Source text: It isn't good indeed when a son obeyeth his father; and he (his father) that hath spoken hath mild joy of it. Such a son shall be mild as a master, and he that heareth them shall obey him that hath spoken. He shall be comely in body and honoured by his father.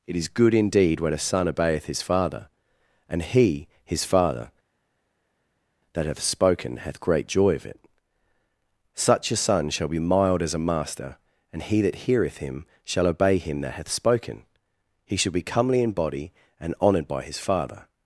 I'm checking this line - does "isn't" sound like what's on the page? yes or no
no